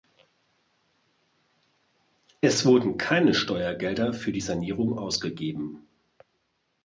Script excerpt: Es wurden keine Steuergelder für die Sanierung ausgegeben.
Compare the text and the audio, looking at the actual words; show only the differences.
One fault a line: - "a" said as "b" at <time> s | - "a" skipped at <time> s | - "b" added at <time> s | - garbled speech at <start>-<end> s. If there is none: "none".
none